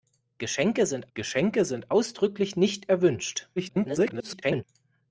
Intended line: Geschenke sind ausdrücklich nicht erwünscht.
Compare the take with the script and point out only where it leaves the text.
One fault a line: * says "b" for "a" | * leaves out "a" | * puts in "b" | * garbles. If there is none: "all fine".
* puts in "geschenke sind"
* garbles